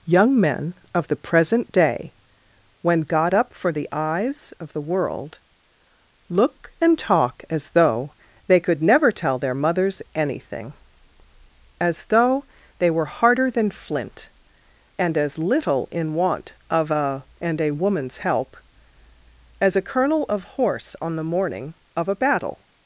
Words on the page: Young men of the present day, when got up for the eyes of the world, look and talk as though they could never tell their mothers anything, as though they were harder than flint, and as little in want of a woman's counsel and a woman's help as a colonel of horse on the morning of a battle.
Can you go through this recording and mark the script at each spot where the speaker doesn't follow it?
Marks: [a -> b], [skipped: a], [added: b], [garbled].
Young men of the present day, when got up for the eyes of the world, look and talk as though they could never tell their mothers anything, as though they were harder than flint, and as little in want of a [skipped: woman's counsel] and a woman's help as a colonel of horse on the morning of a battle.